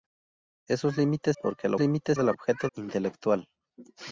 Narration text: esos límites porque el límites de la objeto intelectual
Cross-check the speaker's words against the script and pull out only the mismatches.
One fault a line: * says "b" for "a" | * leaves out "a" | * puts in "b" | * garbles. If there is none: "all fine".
all fine